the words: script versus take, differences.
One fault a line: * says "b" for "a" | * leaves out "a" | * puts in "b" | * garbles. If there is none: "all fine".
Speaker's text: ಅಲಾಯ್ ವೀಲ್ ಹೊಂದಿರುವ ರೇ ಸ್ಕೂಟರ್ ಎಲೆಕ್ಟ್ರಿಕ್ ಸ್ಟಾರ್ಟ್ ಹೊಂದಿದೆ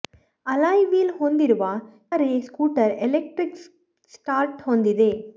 all fine